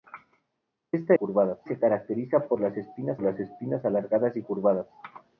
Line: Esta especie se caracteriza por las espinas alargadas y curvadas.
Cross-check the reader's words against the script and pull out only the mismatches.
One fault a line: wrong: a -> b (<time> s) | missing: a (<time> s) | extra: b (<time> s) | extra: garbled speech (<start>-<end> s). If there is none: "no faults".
wrong: especie -> curvadas (1.1 s)
extra: las espinas (3.2 s)